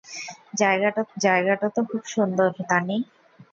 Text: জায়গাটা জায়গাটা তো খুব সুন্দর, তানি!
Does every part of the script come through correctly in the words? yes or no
yes